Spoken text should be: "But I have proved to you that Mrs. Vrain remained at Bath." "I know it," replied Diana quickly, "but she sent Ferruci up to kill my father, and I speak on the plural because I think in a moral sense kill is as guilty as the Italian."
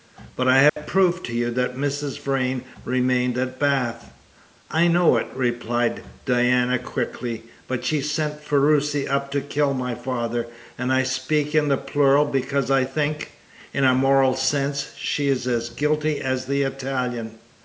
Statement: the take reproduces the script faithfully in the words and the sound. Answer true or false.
false